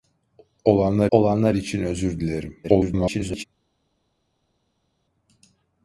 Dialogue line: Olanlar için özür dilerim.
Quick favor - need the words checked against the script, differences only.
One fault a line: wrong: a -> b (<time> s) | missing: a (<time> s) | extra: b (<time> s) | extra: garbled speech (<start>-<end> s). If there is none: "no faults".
extra: olanlar (1.1 s)
extra: garbled speech (2.6-3.4 s)